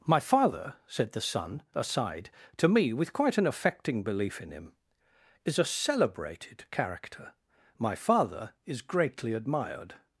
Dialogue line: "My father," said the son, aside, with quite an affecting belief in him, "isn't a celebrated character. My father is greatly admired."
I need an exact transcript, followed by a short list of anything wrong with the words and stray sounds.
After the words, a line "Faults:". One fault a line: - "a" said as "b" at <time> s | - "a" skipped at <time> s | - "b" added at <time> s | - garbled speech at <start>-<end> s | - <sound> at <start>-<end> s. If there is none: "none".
"My father," said the son, aside, to me with quite an affecting belief in him, "is a celebrated character. My father is greatly admired."
Faults:
- "to me" added at 2.6 s
- "isn't" said as "is" at 5.5 s